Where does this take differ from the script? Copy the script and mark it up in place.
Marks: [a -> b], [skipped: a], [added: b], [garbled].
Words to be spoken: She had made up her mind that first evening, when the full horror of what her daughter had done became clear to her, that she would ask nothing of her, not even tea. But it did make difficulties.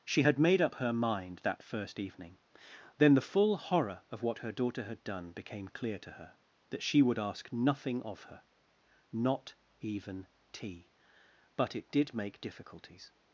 She had made up her mind that first evening, [when -> then] the full horror of what her daughter had done became clear to her, that she would ask nothing of her, not even tea. But it did make difficulties.